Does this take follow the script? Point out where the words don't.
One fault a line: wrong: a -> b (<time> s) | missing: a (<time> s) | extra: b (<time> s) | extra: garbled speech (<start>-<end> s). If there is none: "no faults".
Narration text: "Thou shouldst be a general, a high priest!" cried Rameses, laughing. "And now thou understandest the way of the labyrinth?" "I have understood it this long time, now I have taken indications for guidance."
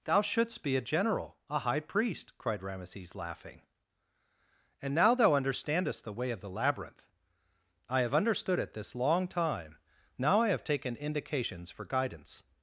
no faults